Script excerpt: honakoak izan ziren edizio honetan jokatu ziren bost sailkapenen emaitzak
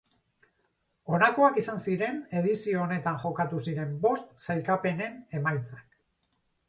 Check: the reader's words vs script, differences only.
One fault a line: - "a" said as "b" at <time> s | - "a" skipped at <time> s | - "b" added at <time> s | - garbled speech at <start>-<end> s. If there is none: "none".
none